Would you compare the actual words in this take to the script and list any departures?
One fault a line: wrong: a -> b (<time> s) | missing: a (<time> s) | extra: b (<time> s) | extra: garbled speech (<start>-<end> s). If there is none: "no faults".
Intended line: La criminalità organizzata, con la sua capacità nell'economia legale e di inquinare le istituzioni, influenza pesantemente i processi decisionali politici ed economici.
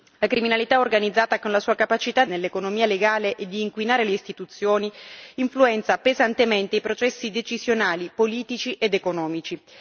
no faults